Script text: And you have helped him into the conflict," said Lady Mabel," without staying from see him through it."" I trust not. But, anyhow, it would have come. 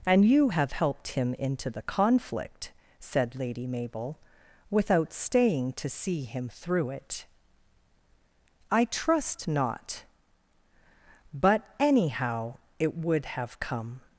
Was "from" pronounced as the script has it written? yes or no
no